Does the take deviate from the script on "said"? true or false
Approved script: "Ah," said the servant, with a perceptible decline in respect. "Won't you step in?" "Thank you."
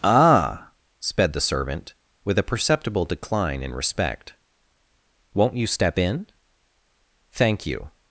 true